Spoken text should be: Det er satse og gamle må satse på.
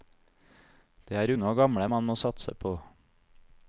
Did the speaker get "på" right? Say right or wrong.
right